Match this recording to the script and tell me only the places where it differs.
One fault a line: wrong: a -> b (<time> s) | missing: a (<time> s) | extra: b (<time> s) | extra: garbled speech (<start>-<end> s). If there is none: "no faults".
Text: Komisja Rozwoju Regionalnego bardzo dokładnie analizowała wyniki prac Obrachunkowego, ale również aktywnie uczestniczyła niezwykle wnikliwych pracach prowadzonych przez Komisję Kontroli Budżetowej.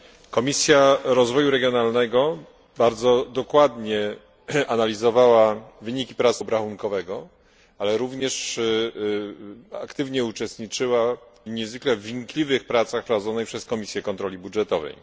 no faults